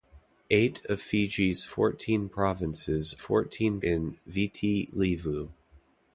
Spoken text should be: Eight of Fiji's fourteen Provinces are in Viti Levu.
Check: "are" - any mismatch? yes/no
yes